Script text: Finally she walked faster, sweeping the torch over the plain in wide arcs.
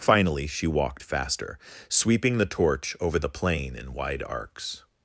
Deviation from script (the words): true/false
false